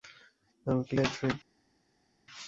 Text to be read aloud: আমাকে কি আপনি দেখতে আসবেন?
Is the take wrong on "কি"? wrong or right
wrong